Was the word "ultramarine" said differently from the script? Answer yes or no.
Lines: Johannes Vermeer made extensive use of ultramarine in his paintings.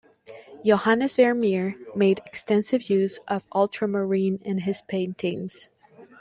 no